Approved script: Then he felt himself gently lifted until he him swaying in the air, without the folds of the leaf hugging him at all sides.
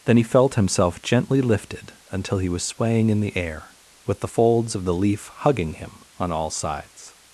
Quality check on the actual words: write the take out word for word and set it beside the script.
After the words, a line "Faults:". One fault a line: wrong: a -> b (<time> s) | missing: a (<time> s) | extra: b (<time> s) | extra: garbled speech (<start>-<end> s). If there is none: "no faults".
Then he felt himself gently lifted until he was swaying in the air, with the folds of the leaf hugging him on all sides.
Faults:
wrong: him -> was (2.5 s)
wrong: without -> with (4.0 s)
wrong: at -> on (6.2 s)